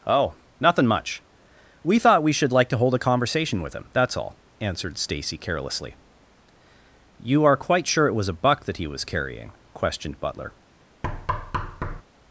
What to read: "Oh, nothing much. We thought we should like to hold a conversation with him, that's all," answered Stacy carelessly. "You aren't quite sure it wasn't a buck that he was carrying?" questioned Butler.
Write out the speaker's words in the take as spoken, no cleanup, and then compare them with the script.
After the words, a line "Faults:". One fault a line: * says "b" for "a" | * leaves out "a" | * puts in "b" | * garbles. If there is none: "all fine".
"Oh, nothing much. We thought we should like to hold a conversation with him, that's all," answered Stacy carelessly. "You are quite sure it was a buck that he was carrying?" questioned Butler.
Faults:
* says "are" for "aren't"
* says "was" for "wasn't"